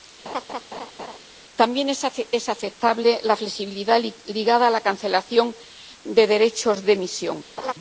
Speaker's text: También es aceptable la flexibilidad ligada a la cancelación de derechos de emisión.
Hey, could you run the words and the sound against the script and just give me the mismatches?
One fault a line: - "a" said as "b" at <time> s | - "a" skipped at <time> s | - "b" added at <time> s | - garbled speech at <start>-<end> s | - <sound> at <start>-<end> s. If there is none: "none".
- laugh at 0.2-1.2 s
- laugh at 7.6-7.7 s